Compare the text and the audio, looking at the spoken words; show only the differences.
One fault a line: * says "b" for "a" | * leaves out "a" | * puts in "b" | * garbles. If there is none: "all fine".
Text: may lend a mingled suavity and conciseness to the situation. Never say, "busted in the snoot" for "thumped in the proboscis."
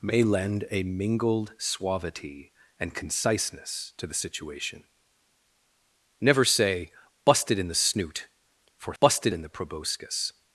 * says "busted" for "thumped"